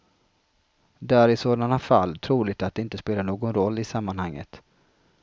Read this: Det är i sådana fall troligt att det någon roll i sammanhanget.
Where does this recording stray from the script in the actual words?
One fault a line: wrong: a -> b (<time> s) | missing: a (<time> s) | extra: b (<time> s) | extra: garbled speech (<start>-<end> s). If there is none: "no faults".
extra: inte spelar (2.8 s)